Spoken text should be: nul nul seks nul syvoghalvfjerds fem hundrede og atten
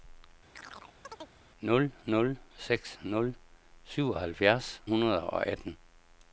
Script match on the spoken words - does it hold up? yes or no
no